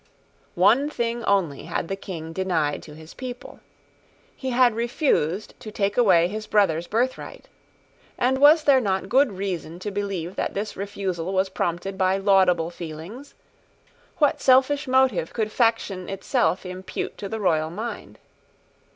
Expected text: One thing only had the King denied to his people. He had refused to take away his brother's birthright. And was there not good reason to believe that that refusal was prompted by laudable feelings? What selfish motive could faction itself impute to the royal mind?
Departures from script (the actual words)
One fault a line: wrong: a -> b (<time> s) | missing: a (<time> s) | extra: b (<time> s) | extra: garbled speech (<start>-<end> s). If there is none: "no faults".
wrong: that -> this (10.5 s)